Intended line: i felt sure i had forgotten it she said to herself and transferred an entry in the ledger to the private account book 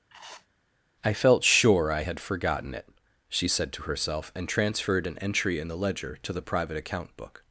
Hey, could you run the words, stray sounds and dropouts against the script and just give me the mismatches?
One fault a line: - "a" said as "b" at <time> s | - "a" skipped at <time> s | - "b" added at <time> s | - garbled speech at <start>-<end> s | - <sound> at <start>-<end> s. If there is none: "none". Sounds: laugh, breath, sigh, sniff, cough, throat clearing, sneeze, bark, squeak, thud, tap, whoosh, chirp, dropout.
- sniff at 0.1-0.5 s